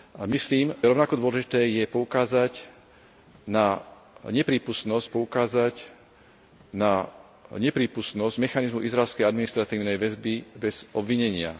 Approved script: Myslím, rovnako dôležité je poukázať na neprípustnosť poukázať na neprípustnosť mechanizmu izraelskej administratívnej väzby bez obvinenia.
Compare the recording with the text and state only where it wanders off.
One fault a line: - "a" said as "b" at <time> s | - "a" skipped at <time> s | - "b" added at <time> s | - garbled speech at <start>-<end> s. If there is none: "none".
none